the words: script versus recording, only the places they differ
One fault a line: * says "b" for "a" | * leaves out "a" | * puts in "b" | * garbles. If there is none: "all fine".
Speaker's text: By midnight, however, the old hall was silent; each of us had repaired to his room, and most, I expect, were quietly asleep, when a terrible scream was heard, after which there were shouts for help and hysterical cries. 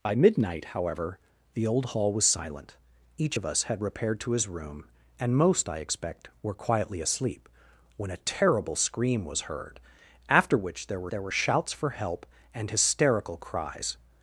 * puts in "there were"